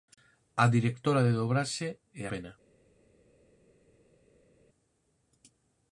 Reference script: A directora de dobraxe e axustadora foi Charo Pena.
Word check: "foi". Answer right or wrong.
wrong